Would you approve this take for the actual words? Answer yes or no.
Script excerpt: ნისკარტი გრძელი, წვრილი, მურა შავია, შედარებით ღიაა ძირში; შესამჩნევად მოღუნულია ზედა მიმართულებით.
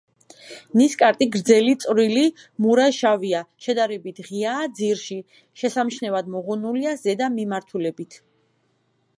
yes